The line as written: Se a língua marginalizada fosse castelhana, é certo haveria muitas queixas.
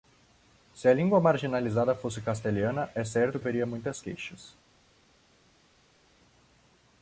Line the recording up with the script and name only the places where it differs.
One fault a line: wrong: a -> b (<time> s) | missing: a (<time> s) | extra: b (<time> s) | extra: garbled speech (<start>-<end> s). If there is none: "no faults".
no faults